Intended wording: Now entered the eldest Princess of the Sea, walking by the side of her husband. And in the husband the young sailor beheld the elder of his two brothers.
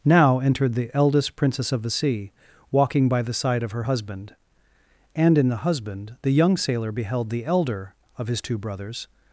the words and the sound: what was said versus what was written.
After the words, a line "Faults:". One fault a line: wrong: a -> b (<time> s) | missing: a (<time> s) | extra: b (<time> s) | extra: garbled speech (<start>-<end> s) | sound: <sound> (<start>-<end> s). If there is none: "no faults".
Now entered the eldest Princess of the Sea, walking by the side of her husband. And in the husband the young sailor beheld the elder of his two brothers.
Faults:
no faults